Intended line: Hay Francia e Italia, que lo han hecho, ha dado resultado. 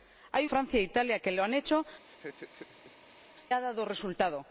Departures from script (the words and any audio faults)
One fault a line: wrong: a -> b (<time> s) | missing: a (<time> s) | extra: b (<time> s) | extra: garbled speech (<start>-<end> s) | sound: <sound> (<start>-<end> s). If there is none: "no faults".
sound: laugh (2.0-3.3 s)